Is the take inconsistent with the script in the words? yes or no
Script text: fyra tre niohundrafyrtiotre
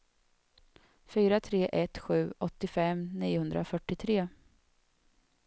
yes